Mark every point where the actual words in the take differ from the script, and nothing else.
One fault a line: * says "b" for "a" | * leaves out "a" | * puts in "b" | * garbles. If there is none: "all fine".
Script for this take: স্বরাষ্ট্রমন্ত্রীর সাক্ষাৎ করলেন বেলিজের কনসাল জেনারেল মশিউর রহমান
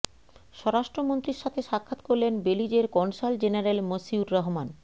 * puts in "সাথে"